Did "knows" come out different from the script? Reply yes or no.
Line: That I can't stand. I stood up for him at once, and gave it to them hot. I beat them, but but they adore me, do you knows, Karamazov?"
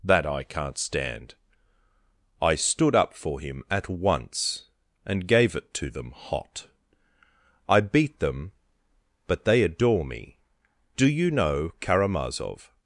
yes